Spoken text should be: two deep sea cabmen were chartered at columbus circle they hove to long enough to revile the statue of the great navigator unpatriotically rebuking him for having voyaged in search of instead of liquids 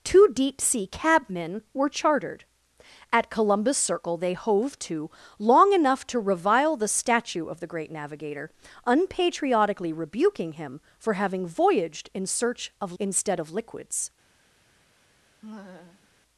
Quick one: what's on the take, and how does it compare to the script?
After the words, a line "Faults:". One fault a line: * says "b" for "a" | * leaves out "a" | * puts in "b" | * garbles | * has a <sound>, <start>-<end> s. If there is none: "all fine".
two deep sea cabmen were chartered at columbus circle they hove to long enough to revile the statue of the great navigator unpatriotically rebuking him for having voyaged in search of instead of liquids
Faults:
* has a laugh, 15.4-16.1 s